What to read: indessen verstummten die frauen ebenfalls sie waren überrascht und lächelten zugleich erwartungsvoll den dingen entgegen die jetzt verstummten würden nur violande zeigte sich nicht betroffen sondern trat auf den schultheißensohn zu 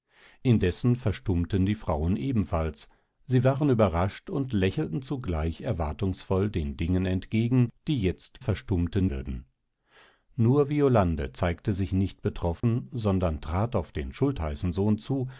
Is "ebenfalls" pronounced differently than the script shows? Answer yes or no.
no